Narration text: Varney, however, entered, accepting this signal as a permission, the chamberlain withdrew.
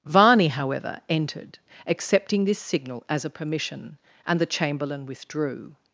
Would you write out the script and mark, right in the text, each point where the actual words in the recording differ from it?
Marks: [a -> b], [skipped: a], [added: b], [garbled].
Varney, however, entered, accepting this signal as a permission, [added: and] the chamberlain withdrew.